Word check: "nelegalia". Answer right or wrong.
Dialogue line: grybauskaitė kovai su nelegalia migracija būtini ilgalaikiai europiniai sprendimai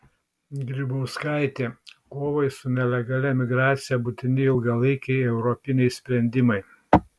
right